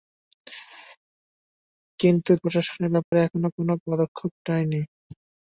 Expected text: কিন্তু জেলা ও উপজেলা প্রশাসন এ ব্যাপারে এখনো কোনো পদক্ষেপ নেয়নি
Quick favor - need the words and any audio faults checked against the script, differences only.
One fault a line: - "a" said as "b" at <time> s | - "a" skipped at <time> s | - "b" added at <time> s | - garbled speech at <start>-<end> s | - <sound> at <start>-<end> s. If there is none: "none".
- "জেলা ও উপজেলা" skipped at 2.3 s
- dropout at 3.1-3.1 s